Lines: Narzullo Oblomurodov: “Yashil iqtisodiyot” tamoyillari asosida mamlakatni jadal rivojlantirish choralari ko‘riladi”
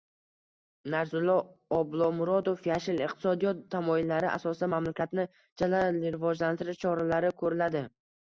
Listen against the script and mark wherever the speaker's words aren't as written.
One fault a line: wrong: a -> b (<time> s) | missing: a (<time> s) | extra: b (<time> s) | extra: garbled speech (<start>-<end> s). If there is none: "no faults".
no faults